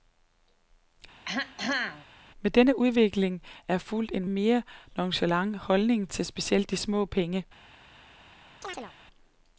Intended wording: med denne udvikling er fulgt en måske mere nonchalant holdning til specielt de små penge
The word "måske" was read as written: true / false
false